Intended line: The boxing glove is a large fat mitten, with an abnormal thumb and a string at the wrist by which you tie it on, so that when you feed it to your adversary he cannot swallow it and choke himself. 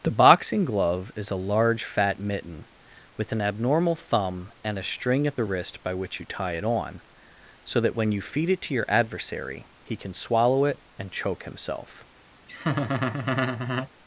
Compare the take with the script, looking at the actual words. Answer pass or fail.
fail